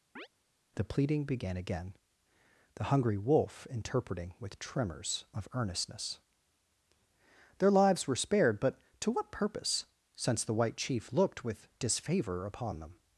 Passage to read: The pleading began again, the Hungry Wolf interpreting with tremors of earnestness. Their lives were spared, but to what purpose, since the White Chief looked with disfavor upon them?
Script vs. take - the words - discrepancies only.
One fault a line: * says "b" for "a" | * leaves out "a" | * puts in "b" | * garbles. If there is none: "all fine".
all fine